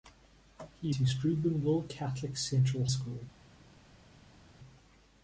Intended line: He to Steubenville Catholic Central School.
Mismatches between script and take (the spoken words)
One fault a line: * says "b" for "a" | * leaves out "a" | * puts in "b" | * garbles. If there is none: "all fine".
all fine